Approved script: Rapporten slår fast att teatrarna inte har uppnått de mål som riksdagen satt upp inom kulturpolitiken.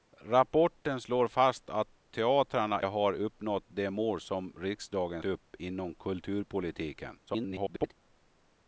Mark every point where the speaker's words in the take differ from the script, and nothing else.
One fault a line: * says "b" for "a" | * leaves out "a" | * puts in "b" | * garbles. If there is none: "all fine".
* leaves out "inte"
* leaves out "satt"
* garbles